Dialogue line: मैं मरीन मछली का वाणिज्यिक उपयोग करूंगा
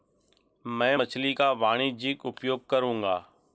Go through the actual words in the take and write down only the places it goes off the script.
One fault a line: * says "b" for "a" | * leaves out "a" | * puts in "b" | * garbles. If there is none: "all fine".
* leaves out "मरीन"